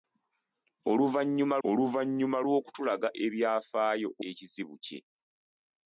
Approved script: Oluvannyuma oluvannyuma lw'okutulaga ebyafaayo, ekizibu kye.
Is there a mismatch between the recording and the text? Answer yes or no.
no